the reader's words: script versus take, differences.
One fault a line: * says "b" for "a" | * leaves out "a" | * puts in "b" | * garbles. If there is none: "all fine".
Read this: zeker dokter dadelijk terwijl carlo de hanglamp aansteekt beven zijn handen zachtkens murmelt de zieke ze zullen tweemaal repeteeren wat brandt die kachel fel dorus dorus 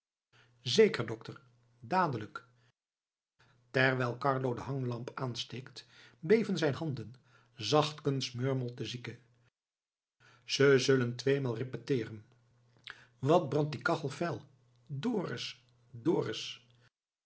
all fine